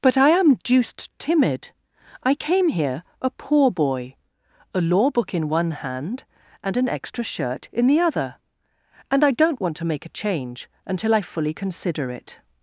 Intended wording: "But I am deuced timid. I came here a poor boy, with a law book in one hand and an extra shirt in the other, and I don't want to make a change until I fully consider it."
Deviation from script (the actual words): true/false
true